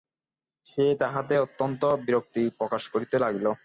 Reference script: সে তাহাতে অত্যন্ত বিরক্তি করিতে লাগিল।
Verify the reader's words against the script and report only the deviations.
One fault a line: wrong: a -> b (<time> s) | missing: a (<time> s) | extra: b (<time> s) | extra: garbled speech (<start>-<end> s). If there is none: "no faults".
extra: প্রকাশ (2.6 s)